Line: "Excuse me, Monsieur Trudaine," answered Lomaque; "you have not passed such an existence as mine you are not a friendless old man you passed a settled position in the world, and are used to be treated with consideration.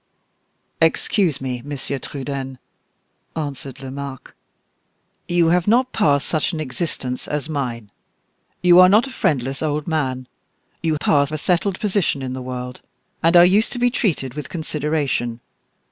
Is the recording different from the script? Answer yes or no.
no